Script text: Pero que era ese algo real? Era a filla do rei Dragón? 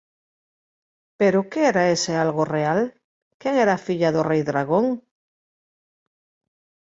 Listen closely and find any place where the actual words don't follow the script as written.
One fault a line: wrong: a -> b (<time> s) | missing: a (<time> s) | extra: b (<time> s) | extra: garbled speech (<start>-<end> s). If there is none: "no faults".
extra: Quen (3.4 s)